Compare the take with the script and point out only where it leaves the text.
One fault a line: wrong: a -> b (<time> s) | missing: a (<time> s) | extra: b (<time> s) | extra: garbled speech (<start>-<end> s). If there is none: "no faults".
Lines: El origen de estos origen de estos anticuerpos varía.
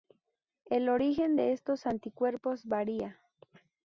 missing: origen de estos (1.8 s)